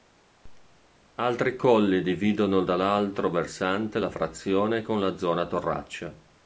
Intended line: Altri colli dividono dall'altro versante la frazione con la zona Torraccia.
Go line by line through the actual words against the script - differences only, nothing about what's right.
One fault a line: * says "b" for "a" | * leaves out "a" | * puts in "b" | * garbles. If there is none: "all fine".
all fine